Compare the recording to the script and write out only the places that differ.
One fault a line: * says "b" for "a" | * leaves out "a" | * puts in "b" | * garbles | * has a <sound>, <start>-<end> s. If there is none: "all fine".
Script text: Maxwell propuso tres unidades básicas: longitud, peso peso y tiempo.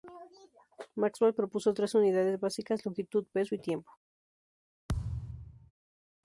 * leaves out "peso"
* has a thud, 4.9-5.7 s